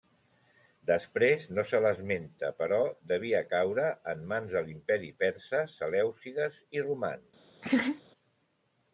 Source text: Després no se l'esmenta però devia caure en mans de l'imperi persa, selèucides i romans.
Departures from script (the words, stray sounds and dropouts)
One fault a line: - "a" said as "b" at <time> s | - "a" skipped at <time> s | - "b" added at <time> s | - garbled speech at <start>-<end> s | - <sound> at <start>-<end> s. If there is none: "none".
- laugh at 7.6-8.0 s